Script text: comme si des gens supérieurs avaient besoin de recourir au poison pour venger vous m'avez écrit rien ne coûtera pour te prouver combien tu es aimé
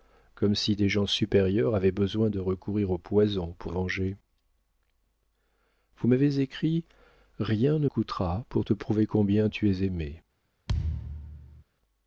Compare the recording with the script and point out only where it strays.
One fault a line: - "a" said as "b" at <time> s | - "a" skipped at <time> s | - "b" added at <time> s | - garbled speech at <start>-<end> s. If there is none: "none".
none